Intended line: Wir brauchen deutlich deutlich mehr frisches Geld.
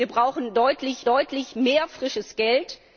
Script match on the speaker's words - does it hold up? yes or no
yes